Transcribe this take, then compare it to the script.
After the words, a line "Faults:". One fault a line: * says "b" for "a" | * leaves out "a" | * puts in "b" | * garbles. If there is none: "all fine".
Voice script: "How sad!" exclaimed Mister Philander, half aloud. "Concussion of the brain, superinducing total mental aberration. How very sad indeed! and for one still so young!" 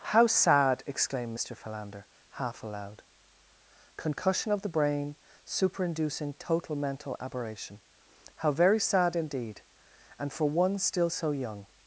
"How sad!" exclaimed Mister Philander, half aloud. "Concussion of the brain, superinducing total mental aberration. How very sad indeed! and for one still so young!"
Faults:
all fine